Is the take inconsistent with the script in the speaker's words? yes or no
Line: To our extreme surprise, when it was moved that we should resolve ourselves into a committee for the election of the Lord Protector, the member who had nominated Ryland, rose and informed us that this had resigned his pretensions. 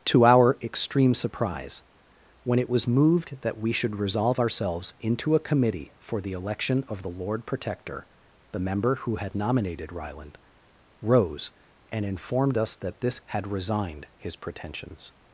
no